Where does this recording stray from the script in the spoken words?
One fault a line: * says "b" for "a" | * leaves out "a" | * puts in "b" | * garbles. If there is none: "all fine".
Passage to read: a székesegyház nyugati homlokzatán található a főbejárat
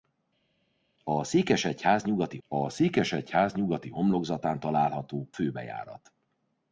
* puts in "a székesegyház nyugati"
* leaves out "a"